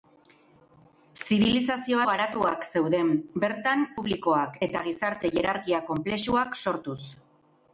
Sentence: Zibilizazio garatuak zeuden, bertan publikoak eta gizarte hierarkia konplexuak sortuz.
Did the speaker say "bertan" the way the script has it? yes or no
yes